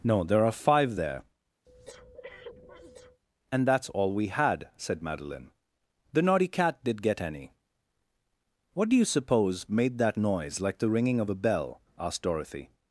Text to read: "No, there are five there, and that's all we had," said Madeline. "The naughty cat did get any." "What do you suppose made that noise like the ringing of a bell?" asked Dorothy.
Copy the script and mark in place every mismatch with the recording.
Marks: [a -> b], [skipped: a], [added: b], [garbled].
"No, there are five there, and that's all we had," said Madeline. "The naughty cat did get any." "What do you suppose made that noise like the ringing of a bell?" asked Dorothy.